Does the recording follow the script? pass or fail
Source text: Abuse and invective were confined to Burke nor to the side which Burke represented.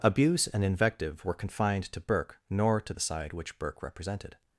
pass